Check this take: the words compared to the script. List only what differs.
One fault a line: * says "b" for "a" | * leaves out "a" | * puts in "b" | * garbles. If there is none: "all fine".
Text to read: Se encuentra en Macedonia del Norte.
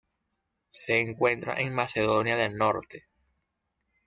all fine